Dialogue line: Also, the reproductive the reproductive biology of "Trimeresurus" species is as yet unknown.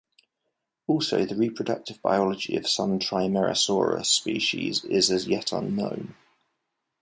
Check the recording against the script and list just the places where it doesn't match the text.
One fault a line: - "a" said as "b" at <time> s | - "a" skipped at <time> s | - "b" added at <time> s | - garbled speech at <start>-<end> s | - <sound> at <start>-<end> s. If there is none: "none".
- "the reproductive" skipped at 2.0 s
- "some" added at 2.7 s